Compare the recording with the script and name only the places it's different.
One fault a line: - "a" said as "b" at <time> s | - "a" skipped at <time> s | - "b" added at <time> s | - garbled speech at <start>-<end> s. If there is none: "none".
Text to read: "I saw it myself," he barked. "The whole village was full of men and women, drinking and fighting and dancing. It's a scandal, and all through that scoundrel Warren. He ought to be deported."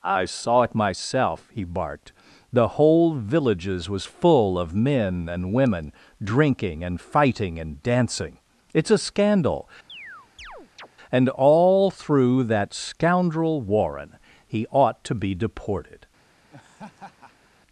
- "village" said as "villages" at 3.1 s